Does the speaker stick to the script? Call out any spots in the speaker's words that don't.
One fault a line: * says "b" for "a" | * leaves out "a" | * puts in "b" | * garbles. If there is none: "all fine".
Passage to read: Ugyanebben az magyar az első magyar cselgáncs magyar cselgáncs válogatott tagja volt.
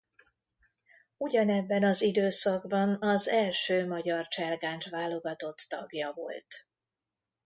* says "időszakban" for "magyar"
* leaves out "magyar cselgáncs"